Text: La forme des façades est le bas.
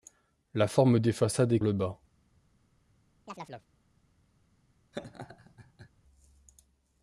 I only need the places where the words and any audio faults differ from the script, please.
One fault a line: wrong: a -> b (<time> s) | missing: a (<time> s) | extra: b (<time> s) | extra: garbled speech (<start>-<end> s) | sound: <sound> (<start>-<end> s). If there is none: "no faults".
sound: chirp (3.3-3.7 s)
sound: laugh (4.9-5.9 s)